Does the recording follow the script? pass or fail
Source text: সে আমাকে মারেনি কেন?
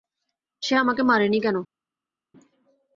pass